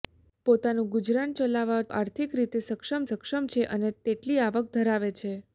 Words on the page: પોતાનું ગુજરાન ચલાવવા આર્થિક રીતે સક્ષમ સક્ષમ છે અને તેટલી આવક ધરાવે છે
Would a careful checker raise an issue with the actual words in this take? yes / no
no